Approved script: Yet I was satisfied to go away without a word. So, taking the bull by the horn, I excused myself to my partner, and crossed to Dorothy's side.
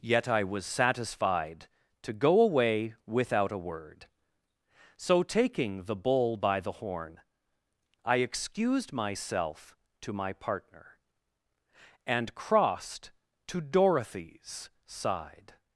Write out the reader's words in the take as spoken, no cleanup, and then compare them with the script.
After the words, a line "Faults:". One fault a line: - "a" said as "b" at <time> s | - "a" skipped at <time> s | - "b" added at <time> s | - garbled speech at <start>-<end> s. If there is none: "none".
Yet I was satisfied to go away without a word. So, taking the bull by the horn, I excused myself to my partner, and crossed to Dorothy's side.
Faults:
none